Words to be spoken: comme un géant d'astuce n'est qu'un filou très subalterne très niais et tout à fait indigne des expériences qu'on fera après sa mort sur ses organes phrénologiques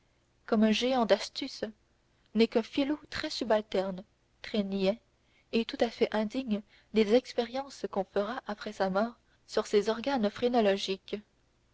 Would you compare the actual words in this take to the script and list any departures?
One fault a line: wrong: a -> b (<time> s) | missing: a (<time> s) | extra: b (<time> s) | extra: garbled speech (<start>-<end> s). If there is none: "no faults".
no faults